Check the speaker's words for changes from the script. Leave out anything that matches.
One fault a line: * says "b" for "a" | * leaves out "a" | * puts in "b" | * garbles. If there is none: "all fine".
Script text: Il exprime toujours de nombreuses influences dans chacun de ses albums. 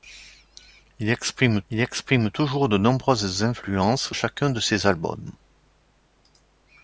* puts in "il exprime"
* leaves out "dans"